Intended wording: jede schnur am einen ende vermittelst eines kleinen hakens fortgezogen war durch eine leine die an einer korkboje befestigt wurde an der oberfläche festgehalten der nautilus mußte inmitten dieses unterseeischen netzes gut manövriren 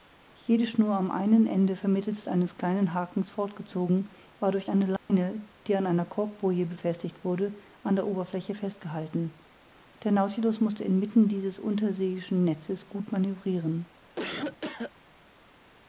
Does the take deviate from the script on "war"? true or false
false